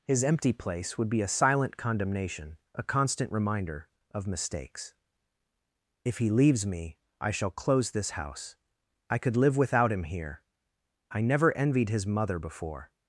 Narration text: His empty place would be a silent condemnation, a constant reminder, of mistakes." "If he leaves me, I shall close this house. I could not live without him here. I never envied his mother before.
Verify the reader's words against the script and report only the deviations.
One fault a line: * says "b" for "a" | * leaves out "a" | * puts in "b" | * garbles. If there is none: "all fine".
* leaves out "not"